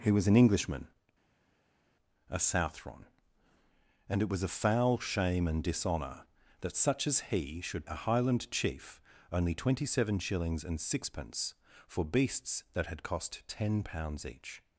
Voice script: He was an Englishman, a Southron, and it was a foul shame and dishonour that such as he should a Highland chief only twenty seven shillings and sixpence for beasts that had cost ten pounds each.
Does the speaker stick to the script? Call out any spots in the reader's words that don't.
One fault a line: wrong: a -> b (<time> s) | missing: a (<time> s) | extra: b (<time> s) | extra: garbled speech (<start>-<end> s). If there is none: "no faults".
no faults